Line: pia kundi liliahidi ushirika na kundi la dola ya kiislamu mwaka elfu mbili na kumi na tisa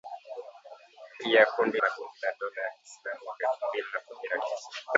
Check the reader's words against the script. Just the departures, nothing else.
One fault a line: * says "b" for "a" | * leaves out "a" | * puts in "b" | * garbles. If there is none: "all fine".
* leaves out "liliahidi ushirika"